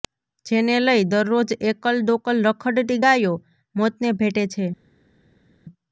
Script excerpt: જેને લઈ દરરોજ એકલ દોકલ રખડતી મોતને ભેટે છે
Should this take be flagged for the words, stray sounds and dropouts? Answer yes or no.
yes